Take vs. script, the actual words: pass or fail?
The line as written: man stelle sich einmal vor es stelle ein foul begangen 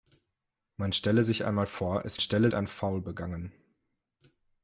pass